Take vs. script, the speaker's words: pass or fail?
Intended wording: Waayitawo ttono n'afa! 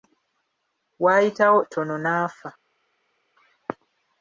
pass